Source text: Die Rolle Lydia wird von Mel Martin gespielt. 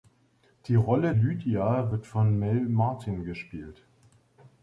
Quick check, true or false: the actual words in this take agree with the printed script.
true